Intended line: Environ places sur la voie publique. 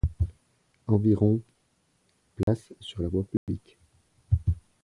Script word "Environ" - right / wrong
right